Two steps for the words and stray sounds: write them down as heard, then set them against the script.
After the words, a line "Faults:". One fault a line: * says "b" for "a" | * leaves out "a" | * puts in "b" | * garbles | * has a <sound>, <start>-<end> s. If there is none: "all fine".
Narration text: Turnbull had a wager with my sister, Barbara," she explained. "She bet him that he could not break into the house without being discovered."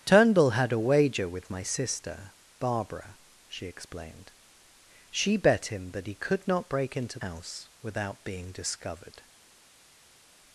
Turnbull had a wager with my sister, Barbara," she explained. "She bet him that he could not break into house without being discovered."
Faults:
* leaves out "the"